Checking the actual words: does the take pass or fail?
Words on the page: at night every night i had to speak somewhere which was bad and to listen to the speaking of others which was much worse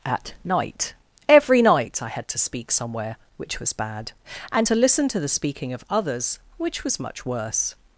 pass